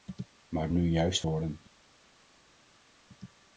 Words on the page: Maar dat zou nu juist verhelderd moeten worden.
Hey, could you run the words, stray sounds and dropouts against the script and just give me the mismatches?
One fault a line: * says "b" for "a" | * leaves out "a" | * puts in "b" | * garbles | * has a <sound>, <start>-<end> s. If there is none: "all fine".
* leaves out "dat zou"
* leaves out "verhelderd moeten"